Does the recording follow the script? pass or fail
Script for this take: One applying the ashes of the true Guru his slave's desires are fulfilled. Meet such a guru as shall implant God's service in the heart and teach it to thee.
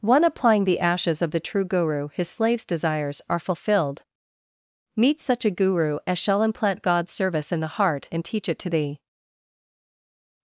pass